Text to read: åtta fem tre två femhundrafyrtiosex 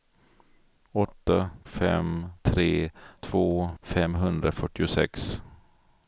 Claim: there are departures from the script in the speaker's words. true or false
false